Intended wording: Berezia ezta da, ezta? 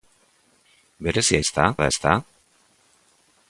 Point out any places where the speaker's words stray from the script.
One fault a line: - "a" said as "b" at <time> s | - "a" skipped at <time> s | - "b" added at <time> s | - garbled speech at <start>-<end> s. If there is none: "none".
none